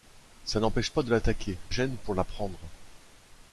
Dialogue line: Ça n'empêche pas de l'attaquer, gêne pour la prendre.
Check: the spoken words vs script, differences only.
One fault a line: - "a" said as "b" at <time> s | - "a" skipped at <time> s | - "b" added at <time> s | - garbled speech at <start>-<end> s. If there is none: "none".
none